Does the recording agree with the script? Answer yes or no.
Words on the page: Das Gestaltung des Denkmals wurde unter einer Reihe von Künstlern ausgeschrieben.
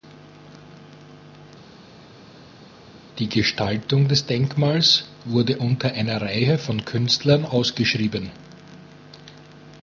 no